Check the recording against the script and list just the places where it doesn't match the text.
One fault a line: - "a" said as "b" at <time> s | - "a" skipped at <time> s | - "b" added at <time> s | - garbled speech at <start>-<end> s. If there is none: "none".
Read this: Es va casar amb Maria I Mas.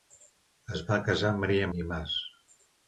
none